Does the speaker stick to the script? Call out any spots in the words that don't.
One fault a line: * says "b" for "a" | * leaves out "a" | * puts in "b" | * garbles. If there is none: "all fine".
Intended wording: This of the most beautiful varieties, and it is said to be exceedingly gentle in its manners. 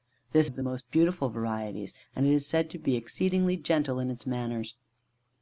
all fine